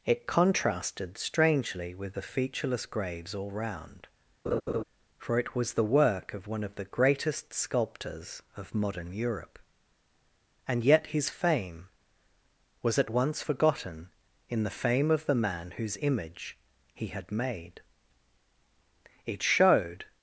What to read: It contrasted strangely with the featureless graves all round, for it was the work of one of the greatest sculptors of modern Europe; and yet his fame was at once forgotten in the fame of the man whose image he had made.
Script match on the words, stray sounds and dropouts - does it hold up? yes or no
no